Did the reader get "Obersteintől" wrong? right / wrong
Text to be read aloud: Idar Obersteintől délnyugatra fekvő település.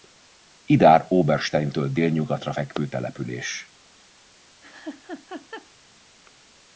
right